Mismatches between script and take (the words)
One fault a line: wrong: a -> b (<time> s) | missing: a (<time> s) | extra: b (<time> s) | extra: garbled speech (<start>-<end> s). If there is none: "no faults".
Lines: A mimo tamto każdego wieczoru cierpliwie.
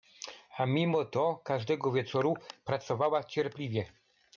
wrong: tamto -> to (1.1 s)
extra: pracowała (2.6 s)